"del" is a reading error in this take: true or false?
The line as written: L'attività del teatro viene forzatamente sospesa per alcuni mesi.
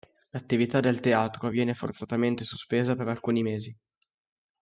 false